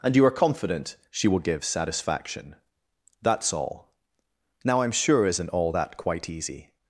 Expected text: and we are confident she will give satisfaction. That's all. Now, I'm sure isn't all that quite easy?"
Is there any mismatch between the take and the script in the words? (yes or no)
yes